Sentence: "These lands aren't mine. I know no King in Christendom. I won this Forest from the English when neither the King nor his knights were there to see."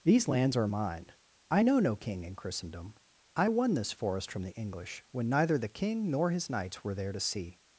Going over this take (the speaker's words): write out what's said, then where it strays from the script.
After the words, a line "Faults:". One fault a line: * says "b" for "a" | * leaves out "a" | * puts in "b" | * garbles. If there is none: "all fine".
"These lands are mine. I know no King in Christendom. I won this Forest from the English when neither the King nor his knights were there to see."
Faults:
* says "are" for "aren't"